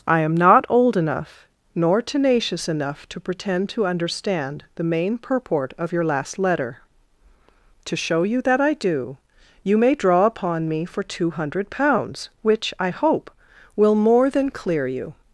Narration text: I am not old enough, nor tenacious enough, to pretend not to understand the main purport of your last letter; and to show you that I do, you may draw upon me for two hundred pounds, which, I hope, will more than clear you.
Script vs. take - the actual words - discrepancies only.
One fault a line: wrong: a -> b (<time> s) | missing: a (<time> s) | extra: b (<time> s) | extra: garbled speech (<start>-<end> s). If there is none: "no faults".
missing: not (3.7 s)
missing: and (6.8 s)